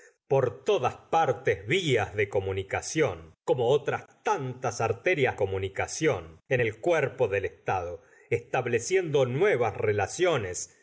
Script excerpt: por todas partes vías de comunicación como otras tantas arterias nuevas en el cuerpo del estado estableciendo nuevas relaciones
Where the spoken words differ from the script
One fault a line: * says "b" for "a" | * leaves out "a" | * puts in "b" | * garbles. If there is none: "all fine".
* says "comunicación" for "nuevas"